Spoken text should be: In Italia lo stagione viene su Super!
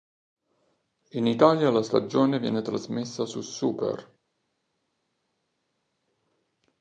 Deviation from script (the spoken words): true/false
true